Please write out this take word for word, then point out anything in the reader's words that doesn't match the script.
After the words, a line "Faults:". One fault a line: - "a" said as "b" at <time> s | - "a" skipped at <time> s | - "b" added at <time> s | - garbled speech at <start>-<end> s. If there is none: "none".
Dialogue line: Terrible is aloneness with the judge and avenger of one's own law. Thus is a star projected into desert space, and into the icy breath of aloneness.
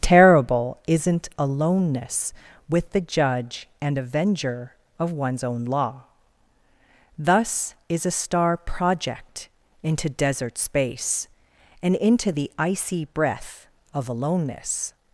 Terrible isn't aloneness with the judge and avenger of one's own law. Thus is a star project into desert space, and into the icy breath of aloneness.
Faults:
- "is" said as "isn't" at 0.9 s
- "projected" said as "project" at 8.6 s